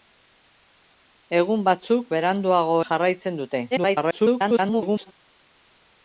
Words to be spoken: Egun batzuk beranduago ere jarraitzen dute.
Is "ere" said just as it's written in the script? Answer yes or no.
no